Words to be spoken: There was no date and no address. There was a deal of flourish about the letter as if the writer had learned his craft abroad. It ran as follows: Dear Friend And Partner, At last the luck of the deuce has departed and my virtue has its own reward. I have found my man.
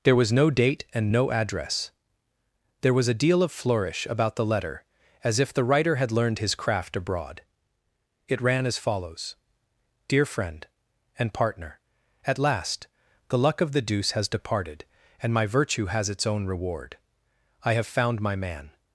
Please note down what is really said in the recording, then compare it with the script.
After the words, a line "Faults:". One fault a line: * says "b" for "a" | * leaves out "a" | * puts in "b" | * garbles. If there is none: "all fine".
There was no date and no address. There was a deal of flourish about the letter as if the writer had learned his craft abroad. It ran as follows: Dear Friend And Partner, At last the luck of the deuce has departed and my virtue has its own reward. I have found my man.
Faults:
all fine